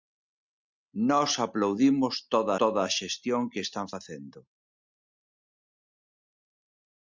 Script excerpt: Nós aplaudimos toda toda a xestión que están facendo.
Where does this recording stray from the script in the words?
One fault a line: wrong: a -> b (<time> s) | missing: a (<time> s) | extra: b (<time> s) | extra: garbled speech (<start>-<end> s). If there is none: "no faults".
no faults